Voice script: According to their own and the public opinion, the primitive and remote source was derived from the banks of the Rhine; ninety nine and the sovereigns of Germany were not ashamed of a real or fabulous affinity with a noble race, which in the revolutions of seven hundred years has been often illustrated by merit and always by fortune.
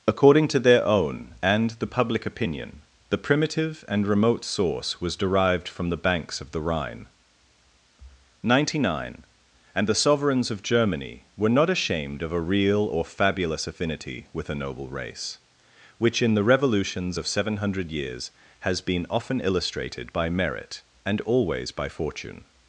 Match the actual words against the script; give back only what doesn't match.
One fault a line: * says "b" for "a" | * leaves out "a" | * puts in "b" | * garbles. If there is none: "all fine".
all fine